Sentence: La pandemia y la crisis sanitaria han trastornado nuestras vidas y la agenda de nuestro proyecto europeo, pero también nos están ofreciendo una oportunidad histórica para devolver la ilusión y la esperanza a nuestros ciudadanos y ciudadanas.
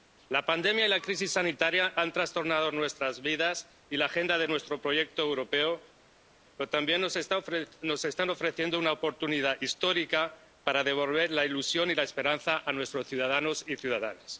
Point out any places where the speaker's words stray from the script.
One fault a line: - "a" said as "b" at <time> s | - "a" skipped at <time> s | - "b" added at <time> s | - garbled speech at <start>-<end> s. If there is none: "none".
none